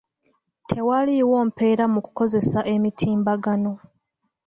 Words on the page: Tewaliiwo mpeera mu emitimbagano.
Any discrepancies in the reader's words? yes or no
yes